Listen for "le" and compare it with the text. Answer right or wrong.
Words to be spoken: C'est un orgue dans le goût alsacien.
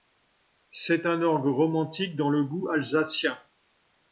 right